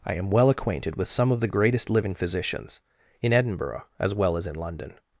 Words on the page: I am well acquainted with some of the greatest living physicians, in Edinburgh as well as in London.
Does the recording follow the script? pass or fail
pass